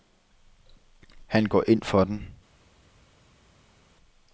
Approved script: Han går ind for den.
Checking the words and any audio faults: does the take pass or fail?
pass